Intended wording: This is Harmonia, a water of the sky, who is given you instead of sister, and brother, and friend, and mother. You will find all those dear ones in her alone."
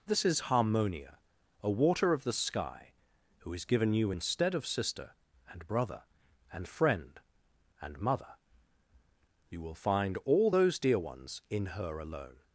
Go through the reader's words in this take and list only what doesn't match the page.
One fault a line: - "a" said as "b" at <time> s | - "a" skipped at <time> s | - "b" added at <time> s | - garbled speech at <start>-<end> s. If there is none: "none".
none